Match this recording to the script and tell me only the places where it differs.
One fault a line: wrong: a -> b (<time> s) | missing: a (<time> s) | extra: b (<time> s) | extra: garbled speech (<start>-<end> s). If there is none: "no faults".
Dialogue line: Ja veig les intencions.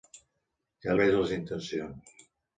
no faults